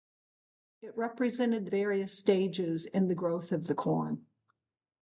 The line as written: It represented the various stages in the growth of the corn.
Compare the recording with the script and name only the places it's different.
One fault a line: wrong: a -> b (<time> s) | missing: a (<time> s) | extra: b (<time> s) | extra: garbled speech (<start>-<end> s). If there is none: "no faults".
no faults